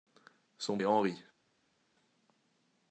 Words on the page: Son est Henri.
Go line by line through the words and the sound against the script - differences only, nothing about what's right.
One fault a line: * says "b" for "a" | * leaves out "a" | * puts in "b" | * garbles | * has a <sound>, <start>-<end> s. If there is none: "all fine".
all fine